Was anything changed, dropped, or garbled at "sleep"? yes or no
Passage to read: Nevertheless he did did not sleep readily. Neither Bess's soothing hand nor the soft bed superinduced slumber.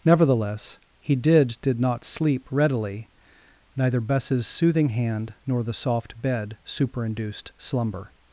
no